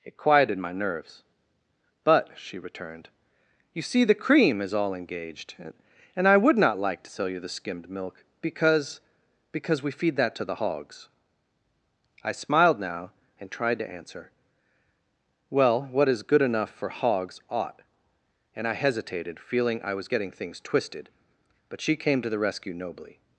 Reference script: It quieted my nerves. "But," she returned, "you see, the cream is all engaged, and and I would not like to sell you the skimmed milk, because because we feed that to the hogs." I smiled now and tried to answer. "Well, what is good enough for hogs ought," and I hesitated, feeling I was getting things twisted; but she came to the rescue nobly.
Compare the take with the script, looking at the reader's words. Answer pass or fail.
fail